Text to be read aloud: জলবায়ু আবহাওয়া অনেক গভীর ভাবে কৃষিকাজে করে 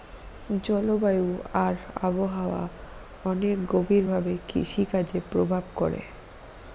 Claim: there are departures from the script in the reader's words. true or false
true